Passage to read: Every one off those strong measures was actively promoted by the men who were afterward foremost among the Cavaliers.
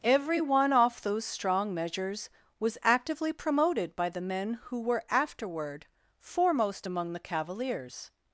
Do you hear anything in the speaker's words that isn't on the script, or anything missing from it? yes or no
no